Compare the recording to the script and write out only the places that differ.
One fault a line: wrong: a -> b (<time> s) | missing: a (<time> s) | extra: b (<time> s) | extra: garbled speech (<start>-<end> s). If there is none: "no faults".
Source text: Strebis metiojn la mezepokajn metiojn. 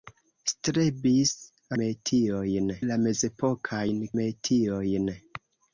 no faults